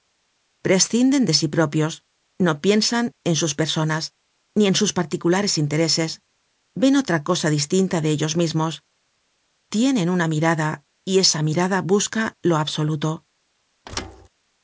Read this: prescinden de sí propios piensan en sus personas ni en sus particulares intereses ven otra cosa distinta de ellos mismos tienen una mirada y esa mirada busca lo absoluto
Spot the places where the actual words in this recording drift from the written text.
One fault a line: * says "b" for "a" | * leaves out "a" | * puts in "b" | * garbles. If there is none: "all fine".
* puts in "no"